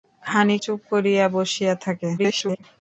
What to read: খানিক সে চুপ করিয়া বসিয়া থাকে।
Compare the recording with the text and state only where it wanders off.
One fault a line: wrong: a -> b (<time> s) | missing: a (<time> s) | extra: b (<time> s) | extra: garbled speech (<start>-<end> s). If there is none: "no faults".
missing: সে (0.6 s)
extra: garbled speech (2.2-2.6 s)